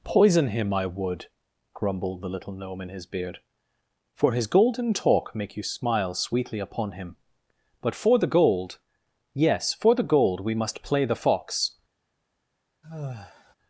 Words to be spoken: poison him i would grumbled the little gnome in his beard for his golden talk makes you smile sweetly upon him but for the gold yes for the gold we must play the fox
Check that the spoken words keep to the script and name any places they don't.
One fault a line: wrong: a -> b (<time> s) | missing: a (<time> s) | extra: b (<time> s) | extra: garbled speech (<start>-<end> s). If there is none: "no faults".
wrong: makes -> make (5.3 s)